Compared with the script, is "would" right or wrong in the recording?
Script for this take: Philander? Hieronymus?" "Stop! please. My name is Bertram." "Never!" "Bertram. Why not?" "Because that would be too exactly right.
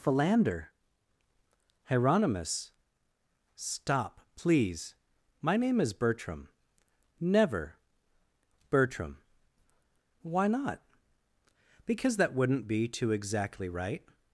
wrong